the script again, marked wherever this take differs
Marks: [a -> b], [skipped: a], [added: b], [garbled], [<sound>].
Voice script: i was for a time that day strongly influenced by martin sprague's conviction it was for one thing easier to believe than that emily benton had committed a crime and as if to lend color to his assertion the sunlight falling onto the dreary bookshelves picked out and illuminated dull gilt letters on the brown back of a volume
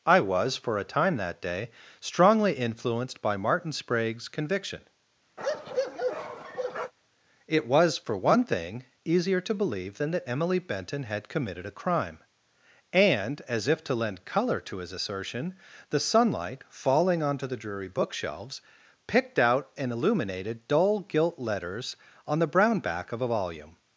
i was for a time that day strongly influenced by martin sprague's conviction [bark] it was for one thing easier to believe than that emily benton had committed a crime and as if to lend color to his assertion the sunlight falling onto the dreary bookshelves picked out and illuminated dull gilt letters on the brown back of a volume